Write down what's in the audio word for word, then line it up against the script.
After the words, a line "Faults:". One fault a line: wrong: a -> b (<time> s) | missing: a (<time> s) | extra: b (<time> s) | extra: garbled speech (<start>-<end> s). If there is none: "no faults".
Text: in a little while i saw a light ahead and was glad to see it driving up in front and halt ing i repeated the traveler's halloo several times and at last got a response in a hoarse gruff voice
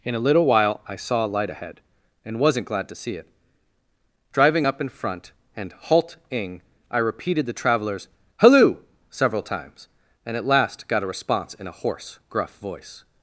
in a little while i saw a light ahead and wasn't glad to see it driving up in front and halt ing i repeated the traveler's halloo several times and at last got a response in a hoarse gruff voice
Faults:
wrong: was -> wasn't (2.4 s)